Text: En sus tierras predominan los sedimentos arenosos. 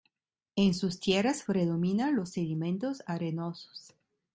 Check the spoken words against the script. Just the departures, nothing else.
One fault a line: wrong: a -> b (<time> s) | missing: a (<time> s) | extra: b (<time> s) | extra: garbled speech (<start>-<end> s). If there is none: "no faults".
no faults